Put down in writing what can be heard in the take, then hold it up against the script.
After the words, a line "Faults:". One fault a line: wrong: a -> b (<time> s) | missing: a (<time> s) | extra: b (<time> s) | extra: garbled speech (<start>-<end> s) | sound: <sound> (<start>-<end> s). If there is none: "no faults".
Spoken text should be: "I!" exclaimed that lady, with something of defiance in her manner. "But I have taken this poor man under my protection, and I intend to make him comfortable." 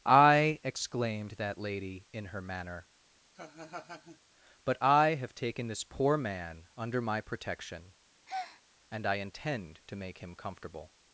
"I!" exclaimed that lady, in her manner. "But I have taken this poor man under my protection, and I intend to make him comfortable."
Faults:
missing: with something of defiance (2.1 s)
sound: laugh (3.3-4.2 s)
sound: breath (8.3-8.6 s)